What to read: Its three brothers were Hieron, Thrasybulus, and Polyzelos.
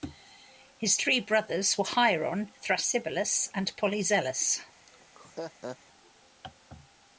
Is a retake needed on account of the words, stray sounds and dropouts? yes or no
yes